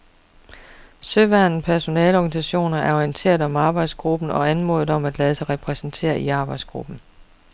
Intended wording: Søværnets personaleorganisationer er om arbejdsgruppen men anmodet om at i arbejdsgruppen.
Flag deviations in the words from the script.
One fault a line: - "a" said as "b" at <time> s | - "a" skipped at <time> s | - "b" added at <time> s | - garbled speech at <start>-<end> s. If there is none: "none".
- "orienteret" added at 2.9 s
- "men" said as "og" at 4.3 s
- "lade sig repræsentere" added at 5.2 s